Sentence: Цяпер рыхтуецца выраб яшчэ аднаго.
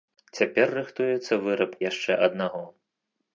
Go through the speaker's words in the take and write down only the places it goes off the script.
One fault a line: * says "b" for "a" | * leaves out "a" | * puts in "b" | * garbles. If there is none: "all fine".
all fine